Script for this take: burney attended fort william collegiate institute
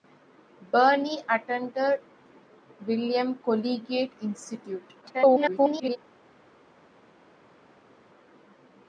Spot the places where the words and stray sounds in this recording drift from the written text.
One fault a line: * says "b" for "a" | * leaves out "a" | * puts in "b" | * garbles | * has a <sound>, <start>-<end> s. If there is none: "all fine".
* leaves out "fort"
* garbles